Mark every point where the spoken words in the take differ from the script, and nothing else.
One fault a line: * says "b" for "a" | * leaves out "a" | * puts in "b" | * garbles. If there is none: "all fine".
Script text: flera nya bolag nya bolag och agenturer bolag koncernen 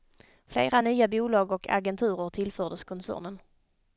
* leaves out "nya bolag"
* says "tillfördes" for "bolag"